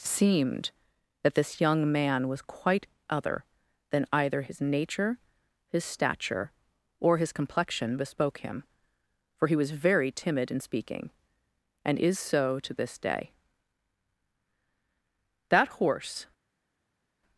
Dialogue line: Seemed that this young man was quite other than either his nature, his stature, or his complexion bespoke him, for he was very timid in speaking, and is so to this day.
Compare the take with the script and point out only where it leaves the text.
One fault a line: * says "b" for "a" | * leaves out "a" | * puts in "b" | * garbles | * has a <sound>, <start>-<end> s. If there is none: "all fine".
* puts in "That horse"